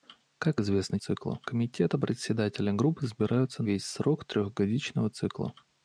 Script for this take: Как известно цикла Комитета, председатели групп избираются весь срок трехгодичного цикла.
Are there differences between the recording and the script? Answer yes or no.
no